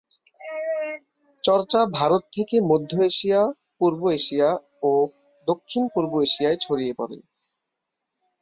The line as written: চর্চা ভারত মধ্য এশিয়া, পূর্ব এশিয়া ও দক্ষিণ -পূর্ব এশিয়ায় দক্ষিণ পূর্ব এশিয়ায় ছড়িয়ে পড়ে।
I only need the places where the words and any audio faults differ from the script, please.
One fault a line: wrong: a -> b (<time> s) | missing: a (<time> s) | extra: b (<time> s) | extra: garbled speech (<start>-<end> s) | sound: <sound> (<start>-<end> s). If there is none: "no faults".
extra: থেকে (2.3 s)
missing: দক্ষিণ পূর্ব এশিয়ায় (6.6 s)